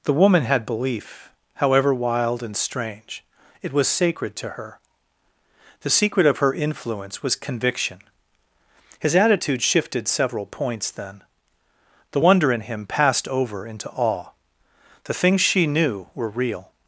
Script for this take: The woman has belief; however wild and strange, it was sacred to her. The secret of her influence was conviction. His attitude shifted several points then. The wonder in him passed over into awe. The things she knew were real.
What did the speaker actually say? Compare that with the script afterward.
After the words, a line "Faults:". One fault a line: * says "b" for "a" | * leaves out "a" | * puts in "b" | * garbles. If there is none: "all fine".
The woman had belief; however wild and strange, it was sacred to her. The secret of her influence was conviction. His attitude shifted several points then. The wonder in him passed over into awe. The things she knew were real.
Faults:
* says "had" for "has"